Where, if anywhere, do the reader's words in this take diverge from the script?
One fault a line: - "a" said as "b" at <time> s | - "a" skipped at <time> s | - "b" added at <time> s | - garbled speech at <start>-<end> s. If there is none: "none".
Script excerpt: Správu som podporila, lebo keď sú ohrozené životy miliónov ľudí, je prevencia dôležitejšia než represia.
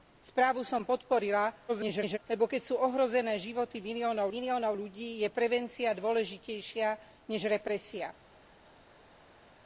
- garbled speech at 1.7-2.2 s
- "miliónov" added at 4.3 s